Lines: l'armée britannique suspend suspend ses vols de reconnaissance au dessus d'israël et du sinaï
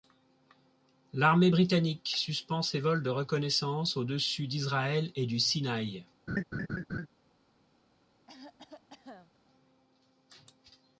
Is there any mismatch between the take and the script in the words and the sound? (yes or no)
yes